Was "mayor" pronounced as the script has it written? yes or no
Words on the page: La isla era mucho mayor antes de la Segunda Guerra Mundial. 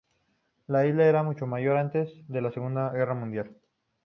yes